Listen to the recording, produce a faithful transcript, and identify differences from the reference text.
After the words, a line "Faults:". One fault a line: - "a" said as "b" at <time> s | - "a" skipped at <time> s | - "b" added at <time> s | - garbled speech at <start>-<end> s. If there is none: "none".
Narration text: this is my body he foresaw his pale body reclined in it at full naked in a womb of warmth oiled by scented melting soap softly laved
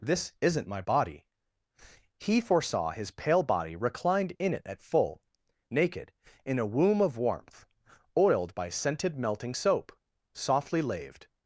this isn't my body he foresaw his pale body reclined in it at full naked in a womb of warmth oiled by scented melting soap softly laved
Faults:
- "is" said as "isn't" at 0.4 s